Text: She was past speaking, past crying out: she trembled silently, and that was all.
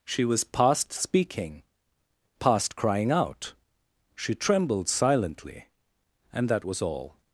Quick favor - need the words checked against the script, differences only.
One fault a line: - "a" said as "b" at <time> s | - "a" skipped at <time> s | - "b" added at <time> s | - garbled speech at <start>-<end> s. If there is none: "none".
none